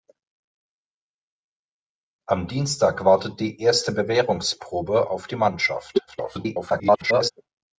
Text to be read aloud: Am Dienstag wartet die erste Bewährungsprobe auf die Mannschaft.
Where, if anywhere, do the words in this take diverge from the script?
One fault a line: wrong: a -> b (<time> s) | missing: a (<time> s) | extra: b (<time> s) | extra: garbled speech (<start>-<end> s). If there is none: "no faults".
extra: garbled speech (6.1-7.3 s)